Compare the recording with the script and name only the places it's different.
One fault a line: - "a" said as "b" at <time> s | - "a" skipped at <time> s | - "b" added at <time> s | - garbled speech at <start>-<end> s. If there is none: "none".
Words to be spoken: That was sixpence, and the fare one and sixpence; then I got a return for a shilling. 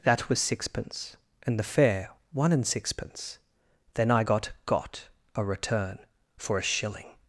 - "got" added at 4.6 s